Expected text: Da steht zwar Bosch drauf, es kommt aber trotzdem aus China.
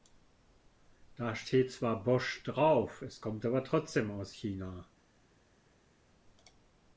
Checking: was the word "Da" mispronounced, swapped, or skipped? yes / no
no